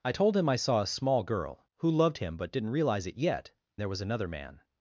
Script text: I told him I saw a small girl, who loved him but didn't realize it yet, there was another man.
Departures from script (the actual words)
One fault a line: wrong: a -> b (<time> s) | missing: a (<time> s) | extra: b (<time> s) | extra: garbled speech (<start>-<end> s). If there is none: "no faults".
no faults